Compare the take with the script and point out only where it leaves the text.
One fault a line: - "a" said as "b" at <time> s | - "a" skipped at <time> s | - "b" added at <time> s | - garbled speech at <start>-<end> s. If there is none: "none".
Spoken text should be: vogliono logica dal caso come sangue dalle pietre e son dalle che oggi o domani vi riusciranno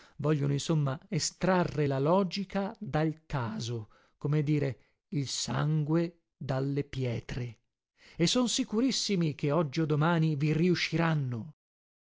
- "insomma estrarre la" added at 0.5 s
- "dire il" added at 4.4 s
- "dalle" said as "sicurissimi" at 8.5 s